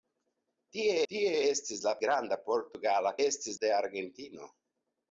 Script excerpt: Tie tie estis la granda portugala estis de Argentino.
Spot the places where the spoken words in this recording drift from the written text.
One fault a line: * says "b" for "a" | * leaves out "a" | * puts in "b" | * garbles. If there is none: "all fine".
all fine